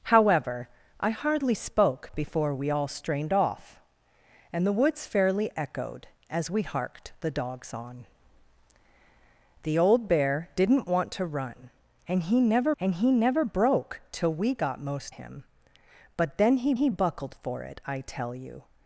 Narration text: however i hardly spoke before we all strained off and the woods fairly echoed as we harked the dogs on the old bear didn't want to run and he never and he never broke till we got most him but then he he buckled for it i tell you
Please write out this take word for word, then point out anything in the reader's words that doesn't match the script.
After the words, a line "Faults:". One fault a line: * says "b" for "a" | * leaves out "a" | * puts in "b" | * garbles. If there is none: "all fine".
however i hardly spoke before we all strained off and the woods fairly echoed as we harked the dogs on the old bear didn't want to run and he never and he never broke till we got most him but then he he buckled for it i tell you
Faults:
all fine